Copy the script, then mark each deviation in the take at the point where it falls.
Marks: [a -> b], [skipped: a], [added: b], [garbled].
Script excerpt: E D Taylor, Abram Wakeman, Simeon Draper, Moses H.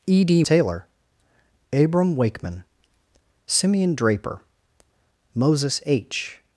E D Taylor, Abram Wakeman, Simeon Draper, Moses H.